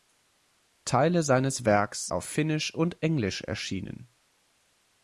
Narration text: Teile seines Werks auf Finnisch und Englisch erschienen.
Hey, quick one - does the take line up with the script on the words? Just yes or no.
yes